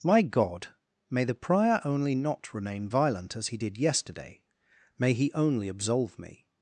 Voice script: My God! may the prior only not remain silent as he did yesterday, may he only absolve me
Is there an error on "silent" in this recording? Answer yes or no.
yes